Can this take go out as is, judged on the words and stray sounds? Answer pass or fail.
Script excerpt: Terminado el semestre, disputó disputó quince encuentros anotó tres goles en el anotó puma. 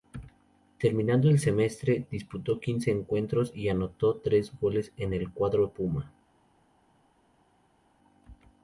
fail